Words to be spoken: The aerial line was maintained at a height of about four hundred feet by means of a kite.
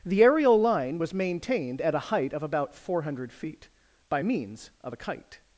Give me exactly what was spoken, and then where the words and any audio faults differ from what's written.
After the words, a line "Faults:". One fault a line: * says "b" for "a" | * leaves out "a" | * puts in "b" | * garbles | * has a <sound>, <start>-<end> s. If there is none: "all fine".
The aerial line was maintained at a height of about four hundred feet by means of a kite.
Faults:
all fine